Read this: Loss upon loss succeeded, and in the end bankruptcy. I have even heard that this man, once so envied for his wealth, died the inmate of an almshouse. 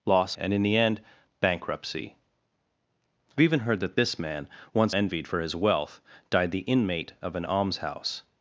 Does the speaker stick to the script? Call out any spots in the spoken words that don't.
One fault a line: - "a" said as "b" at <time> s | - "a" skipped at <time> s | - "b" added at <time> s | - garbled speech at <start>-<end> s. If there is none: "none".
- "upon loss succeeded" skipped at 0.3 s
- "have" skipped at 3.4 s
- "so" skipped at 4.9 s